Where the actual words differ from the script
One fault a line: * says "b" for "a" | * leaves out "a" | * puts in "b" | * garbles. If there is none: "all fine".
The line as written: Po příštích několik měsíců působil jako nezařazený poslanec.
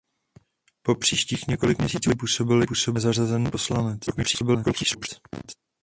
* garbles